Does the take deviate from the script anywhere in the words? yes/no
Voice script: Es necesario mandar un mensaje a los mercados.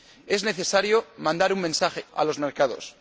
no